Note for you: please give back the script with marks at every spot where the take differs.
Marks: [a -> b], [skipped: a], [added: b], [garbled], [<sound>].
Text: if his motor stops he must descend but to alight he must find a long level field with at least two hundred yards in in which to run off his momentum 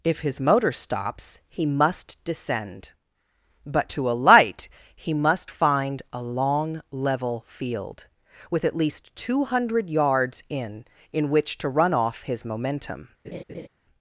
if his motor stops he must descend but to alight he must find a long level field with at least two hundred yards in in which to run off his momentum [laugh]